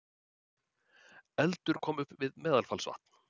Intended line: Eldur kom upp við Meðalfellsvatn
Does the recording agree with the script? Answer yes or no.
yes